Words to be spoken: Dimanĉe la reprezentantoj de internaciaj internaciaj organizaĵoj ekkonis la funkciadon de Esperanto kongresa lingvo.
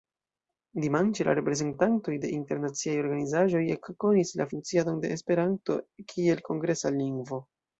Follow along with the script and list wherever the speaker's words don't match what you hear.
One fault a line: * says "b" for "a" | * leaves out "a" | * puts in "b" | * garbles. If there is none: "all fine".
* leaves out "internaciaj"
* puts in "kiel"